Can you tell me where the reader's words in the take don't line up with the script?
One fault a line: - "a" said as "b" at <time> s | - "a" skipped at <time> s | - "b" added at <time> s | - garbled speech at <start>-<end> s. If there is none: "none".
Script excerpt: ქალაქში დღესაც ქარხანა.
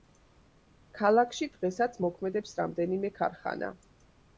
- "მოქმედებს რამდენიმე" added at 2.1 s